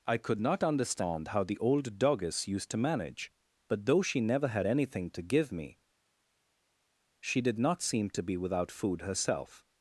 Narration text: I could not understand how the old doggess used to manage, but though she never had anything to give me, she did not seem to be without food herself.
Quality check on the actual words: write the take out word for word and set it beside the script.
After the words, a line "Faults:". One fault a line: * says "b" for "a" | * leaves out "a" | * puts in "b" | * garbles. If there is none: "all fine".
I could not understand how the old doggess used to manage, but though she never had anything to give me, she did not seem to be without food herself.
Faults:
all fine